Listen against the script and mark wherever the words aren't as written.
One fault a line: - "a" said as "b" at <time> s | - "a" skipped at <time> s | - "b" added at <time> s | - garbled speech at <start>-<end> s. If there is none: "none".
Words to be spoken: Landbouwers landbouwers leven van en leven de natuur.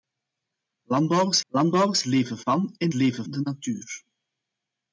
none